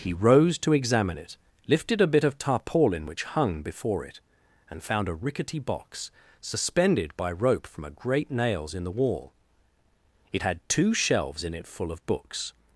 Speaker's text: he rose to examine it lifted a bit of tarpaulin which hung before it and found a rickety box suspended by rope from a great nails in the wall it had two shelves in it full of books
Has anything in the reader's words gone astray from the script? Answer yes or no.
no